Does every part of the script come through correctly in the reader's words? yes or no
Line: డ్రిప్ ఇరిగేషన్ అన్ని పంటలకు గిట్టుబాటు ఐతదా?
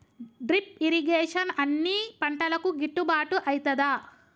yes